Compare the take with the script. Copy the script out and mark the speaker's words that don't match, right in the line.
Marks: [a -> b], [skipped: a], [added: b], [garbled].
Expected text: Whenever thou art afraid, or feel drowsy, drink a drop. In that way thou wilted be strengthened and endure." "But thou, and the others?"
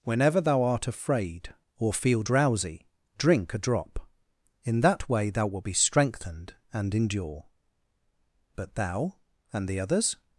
Whenever thou art afraid, or feel drowsy, drink a drop. In that way thou [wilted -> wilt] be strengthened and endure." "But thou, and the others?"